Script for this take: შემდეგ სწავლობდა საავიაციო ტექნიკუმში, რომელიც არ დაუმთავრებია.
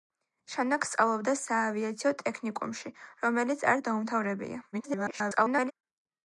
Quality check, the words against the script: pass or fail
fail